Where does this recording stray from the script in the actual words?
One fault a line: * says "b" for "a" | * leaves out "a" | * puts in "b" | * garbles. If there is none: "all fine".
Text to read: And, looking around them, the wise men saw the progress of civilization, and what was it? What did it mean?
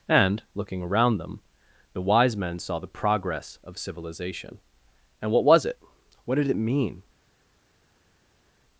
all fine